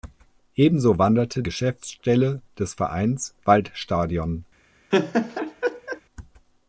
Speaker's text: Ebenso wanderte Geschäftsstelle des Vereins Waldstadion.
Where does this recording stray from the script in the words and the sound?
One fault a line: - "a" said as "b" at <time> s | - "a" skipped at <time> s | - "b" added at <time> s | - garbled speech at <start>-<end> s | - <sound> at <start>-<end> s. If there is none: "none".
- laugh at 4.9-6.0 s